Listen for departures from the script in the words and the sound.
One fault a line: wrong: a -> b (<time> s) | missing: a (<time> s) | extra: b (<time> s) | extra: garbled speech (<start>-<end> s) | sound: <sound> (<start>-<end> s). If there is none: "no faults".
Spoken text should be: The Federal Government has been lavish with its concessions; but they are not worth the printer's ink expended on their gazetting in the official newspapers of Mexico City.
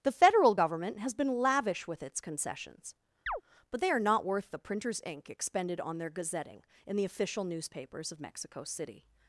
sound: chirp (3.3-3.4 s)